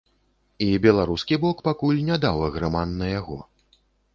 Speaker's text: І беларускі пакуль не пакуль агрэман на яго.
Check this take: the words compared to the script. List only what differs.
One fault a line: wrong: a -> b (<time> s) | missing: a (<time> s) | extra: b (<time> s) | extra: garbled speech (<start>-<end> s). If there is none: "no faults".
extra: бок (1.4 s)
wrong: пакуль -> даў (2.3 s)